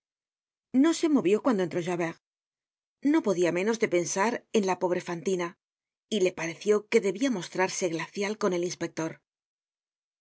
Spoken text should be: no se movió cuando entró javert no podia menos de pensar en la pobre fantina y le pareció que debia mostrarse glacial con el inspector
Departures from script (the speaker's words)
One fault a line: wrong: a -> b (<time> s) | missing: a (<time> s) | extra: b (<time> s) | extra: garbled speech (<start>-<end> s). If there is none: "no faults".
no faults